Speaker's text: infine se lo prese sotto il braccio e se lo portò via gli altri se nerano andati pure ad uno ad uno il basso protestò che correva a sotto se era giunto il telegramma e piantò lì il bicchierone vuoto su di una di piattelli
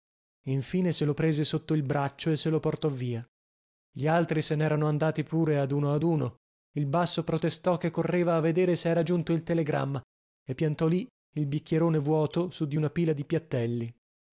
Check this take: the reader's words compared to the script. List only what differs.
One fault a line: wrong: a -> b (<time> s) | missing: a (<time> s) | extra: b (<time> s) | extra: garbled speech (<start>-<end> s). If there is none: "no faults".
wrong: sotto -> vedere (8.4 s)
extra: pila (12.9 s)